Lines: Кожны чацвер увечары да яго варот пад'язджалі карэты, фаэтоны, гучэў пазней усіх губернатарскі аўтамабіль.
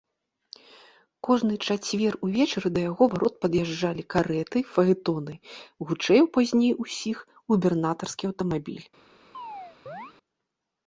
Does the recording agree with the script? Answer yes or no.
yes